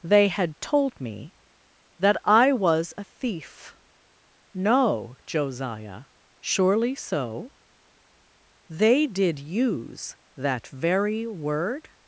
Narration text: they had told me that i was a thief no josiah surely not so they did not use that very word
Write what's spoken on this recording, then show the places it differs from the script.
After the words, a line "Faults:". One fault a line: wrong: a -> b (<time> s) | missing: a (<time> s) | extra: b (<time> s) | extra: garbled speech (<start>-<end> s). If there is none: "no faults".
they had told me that i was a thief no josiah surely so they did use that very word
Faults:
missing: not (6.9 s)
missing: not (9.4 s)